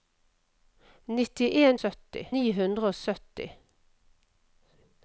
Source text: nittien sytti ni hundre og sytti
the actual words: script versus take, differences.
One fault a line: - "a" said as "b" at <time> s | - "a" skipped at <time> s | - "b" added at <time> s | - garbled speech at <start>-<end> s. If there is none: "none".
none